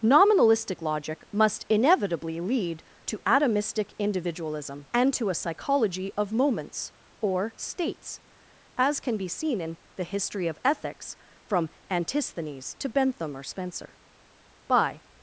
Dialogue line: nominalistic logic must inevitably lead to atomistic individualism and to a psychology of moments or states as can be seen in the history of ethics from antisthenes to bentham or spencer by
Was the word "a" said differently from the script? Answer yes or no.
no